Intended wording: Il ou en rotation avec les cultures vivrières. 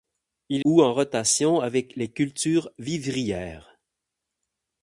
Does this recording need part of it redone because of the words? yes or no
no